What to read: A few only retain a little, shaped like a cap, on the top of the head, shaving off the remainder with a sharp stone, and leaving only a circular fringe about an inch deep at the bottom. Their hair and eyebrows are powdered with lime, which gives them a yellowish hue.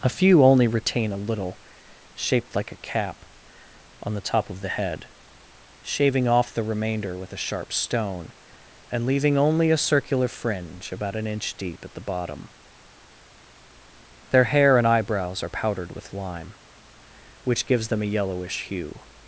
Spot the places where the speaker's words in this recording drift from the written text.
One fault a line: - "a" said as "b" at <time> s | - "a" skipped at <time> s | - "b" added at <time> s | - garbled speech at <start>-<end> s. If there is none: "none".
none